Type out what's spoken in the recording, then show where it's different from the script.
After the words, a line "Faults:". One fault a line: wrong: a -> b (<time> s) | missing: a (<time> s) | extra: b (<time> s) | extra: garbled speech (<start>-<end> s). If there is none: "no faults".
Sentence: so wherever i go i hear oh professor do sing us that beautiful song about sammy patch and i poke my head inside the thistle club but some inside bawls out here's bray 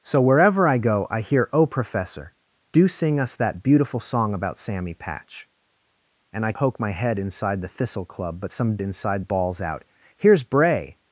so wherever i go i hear oh professor do sing us that beautiful song about sammy patch and i poke my head inside the thistle club but some inside bawls out here's bray
Faults:
no faults